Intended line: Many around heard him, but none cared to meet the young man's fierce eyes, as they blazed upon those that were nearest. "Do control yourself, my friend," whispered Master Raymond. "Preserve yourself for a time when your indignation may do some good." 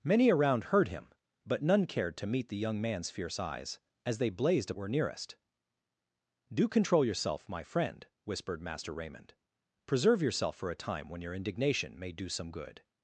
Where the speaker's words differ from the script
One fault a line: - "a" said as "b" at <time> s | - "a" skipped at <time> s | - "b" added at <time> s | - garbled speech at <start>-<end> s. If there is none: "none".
- "upon those that" skipped at 4.7 s